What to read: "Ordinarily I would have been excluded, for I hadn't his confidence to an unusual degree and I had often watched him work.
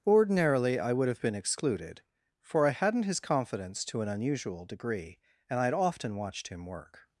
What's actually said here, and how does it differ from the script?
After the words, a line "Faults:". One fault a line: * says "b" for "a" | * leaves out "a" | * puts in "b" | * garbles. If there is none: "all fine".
"Ordinarily I would have been excluded, for I hadn't his confidence to an unusual degree and I had often watched him work.
Faults:
all fine